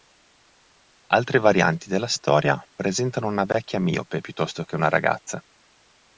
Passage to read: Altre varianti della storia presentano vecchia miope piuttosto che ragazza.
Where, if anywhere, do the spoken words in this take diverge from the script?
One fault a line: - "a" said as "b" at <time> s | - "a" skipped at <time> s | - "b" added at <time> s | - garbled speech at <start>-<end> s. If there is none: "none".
- "una" added at 3.3 s
- "una" added at 4.7 s